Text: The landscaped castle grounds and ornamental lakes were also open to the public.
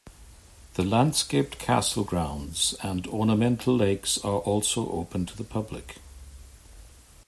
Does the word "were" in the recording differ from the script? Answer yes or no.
yes